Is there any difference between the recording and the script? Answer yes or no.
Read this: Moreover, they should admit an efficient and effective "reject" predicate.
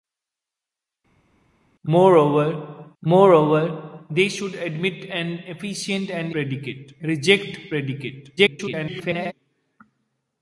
yes